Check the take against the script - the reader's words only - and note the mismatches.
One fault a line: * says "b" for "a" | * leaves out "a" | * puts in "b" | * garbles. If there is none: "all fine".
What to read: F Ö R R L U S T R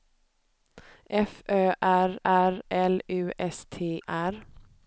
all fine